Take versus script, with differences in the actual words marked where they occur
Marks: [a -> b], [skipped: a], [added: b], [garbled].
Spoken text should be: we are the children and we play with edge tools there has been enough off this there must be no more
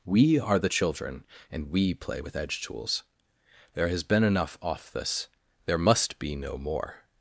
we are the children and we play with edge tools there has been enough off this there must be no more